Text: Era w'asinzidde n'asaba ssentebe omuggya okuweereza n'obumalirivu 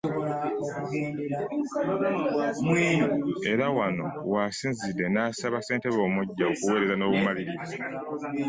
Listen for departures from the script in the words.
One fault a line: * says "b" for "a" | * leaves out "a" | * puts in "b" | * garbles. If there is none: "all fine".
* puts in "wano"